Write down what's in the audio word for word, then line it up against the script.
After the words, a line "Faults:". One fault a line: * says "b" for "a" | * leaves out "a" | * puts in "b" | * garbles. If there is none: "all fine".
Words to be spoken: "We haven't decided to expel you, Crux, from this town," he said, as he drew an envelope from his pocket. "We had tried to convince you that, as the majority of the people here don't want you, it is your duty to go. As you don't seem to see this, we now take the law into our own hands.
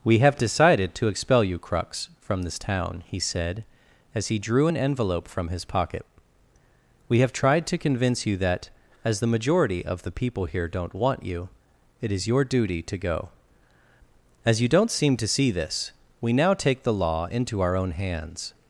"We have decided to expel you, Crux, from this town," he said, as he drew an envelope from his pocket. "We have tried to convince you that, as the majority of the people here don't want you, it is your duty to go. As you don't seem to see this, we now take the law into our own hands.
Faults:
* says "have" for "haven't"
* says "have" for "had"